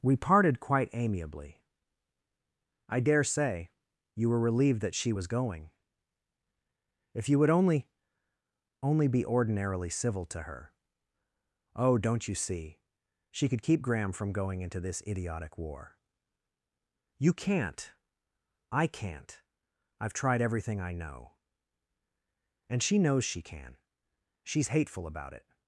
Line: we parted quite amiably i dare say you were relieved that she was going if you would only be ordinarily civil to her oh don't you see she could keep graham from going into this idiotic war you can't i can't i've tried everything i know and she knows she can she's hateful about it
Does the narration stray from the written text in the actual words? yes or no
yes